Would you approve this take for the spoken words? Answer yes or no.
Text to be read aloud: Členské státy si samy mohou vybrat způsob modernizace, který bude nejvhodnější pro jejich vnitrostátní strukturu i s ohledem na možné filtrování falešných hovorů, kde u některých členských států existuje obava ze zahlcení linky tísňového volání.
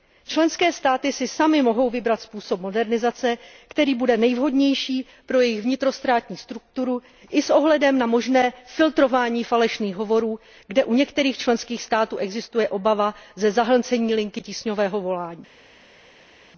yes